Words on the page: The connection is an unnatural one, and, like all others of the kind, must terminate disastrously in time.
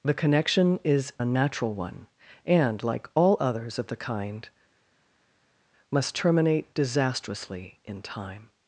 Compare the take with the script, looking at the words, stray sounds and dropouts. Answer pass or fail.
fail